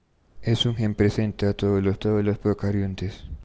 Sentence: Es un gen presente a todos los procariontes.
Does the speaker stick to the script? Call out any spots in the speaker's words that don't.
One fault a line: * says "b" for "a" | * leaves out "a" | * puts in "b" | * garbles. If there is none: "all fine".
* puts in "todos los"